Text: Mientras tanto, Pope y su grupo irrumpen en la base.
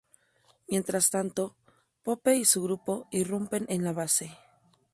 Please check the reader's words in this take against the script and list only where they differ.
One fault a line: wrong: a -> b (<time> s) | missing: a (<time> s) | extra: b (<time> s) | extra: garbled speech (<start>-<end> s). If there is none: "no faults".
no faults